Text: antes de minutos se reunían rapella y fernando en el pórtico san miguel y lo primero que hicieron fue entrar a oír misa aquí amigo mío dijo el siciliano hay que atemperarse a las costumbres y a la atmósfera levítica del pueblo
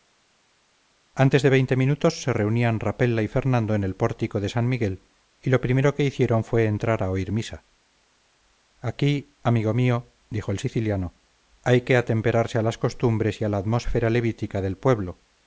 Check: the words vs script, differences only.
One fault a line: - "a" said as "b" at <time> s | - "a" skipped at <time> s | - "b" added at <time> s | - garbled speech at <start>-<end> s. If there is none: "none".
- "veinte" added at 1.5 s
- "de" added at 4.4 s